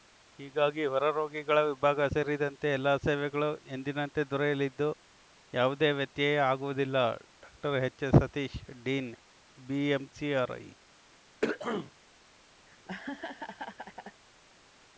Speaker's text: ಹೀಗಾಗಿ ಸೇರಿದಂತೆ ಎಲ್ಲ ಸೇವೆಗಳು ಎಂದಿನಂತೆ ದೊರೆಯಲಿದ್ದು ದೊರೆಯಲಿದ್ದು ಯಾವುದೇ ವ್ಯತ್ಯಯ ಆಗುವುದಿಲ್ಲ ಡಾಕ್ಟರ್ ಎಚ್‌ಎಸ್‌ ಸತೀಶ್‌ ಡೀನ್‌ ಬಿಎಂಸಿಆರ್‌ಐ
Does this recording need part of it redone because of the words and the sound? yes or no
yes